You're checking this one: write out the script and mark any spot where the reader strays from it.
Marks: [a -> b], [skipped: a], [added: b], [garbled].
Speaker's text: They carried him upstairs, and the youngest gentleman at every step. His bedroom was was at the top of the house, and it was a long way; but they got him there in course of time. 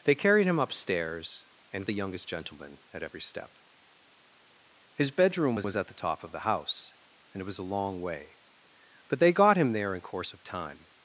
They carried him upstairs, and the youngest gentleman at every step. His bedroom was was at the top of the house, and it was a long way; but they got him there in course of time.